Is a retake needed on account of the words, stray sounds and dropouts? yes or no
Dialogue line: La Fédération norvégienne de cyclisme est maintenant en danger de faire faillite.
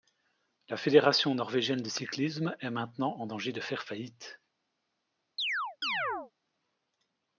yes